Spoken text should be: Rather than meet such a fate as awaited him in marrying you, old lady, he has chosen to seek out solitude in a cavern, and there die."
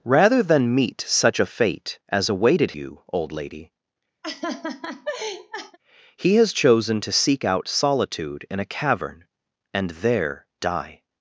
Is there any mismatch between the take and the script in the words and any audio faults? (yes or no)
yes